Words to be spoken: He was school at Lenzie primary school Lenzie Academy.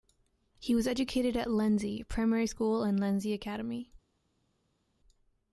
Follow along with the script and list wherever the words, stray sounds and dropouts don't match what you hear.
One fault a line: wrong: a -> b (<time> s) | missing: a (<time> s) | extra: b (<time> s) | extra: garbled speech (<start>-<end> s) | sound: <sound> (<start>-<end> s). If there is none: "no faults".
wrong: school -> educated (0.9 s)
extra: and (2.8 s)